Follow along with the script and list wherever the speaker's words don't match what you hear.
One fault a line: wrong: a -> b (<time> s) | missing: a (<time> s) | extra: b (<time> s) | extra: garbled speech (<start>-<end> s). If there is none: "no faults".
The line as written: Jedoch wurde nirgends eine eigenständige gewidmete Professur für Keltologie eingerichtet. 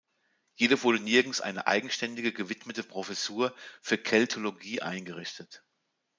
no faults